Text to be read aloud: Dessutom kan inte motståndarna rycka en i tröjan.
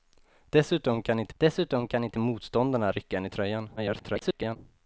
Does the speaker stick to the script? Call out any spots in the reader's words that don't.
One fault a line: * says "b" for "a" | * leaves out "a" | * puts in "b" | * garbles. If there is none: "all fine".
* puts in "dessutom kan inte"
* garbles